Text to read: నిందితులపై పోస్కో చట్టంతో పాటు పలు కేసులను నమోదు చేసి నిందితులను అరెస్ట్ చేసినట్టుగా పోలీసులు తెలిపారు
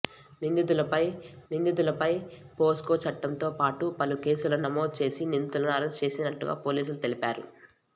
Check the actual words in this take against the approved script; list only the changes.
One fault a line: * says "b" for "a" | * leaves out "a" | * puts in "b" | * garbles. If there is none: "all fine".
* puts in "నిందితులపై"